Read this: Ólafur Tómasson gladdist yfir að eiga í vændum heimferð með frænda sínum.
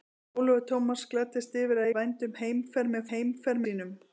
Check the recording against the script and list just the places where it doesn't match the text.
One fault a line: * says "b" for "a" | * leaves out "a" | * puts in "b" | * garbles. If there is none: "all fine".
* leaves out "eiga"
* says "heimferð" for "frænda"